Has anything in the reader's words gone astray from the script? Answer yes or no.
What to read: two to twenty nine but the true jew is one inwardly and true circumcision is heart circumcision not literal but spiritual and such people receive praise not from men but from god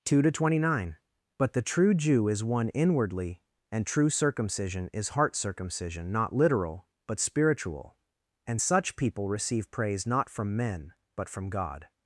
no